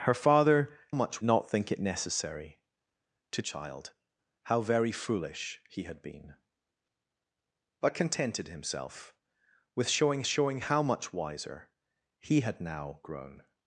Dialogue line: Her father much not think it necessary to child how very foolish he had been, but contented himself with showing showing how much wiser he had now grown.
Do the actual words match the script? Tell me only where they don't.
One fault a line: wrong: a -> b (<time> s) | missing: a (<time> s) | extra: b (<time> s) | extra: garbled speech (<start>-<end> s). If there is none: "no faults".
no faults